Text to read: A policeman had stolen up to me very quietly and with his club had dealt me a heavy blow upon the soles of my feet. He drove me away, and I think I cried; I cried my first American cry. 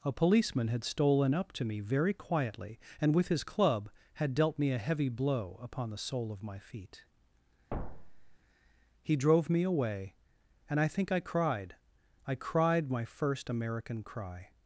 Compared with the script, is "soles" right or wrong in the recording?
wrong